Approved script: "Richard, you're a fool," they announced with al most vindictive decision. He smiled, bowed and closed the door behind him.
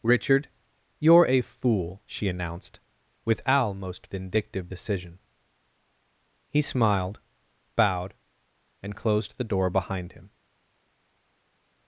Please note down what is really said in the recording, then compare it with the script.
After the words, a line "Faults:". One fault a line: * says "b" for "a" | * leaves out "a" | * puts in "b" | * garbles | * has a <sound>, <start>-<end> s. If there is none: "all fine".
"Richard, you're a fool," she announced with al most vindictive decision. He smiled, bowed and closed the door behind him.
Faults:
* says "she" for "they"